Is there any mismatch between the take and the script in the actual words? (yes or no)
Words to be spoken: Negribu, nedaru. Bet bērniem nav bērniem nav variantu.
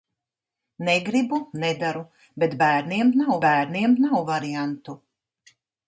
no